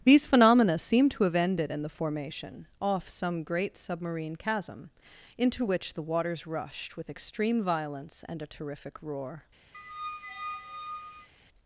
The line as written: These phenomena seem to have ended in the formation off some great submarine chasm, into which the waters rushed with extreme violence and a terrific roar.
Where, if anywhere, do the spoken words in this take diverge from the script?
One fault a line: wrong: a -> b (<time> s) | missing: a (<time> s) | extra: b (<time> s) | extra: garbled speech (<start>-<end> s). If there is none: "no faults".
no faults